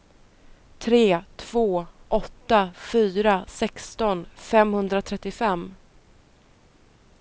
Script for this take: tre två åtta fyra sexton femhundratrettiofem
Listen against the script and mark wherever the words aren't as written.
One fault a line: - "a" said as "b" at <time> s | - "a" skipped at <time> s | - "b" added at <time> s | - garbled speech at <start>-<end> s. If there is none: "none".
none